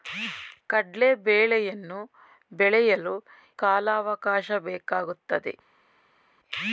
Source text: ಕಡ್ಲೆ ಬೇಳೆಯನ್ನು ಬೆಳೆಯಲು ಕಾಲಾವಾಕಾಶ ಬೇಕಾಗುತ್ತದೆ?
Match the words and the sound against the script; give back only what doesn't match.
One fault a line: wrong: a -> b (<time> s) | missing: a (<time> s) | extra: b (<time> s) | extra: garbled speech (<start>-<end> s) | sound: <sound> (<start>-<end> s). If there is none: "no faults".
no faults